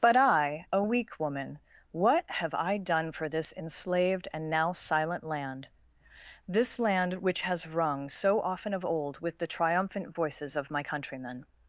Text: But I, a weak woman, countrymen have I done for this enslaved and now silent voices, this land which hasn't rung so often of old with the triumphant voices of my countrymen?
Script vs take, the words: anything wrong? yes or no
yes